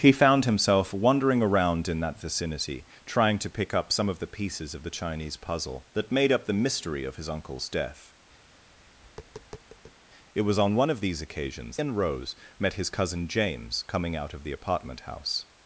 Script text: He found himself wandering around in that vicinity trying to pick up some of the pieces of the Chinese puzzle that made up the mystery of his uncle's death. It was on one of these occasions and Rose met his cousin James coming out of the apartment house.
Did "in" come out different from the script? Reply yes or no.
no